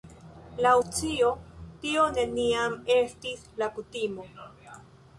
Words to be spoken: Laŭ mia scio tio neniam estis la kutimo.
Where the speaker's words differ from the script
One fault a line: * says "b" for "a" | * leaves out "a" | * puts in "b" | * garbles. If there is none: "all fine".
* leaves out "mia"